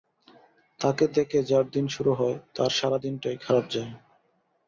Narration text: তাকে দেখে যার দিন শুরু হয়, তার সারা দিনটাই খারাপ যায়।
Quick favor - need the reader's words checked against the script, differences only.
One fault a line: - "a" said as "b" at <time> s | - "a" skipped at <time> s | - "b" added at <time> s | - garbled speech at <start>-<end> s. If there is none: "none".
none